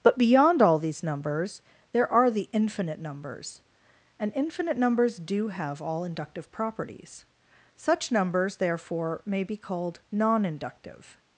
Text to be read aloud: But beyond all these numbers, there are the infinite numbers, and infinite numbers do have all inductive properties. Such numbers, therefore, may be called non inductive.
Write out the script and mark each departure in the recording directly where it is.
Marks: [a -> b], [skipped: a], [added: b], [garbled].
But beyond all these numbers, there are the infinite numbers, and infinite numbers do have all inductive properties. Such numbers, therefore, may be called non inductive.